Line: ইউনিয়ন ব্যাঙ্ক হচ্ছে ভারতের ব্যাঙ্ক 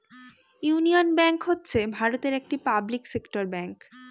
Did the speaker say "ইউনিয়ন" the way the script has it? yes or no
yes